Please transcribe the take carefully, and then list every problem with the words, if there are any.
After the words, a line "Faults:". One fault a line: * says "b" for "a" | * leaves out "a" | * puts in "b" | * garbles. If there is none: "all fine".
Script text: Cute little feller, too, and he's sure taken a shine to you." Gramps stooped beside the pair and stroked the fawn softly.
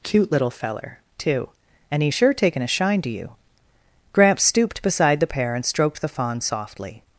Cute little feller, too, and he's sure taken a shine to you." Gramps stooped beside the pair and stroked the fawn softly.
Faults:
all fine